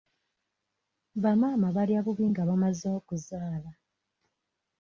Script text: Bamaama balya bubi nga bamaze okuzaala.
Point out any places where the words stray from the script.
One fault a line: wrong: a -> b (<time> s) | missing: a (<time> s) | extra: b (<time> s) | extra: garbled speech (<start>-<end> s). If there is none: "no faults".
no faults